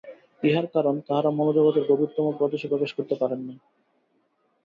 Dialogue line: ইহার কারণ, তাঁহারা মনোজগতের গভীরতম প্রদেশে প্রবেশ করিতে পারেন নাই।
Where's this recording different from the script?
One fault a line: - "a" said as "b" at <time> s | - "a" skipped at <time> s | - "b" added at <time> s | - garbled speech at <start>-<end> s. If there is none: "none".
none